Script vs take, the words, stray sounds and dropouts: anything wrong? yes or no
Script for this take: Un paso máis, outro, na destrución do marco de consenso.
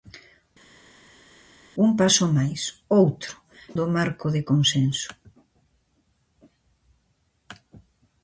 yes